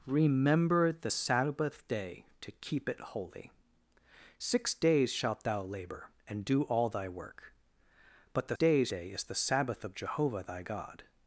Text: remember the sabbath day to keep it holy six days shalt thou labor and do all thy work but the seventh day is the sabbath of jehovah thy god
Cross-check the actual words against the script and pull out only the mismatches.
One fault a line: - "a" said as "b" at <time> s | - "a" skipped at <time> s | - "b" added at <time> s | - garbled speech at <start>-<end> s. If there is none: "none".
- "seventh" said as "days" at 8.5 s